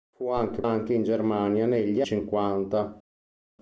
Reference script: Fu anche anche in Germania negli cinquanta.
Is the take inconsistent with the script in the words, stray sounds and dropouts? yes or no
no